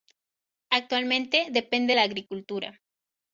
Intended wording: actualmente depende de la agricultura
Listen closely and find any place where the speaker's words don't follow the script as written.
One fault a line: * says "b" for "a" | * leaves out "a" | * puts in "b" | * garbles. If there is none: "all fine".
* leaves out "de"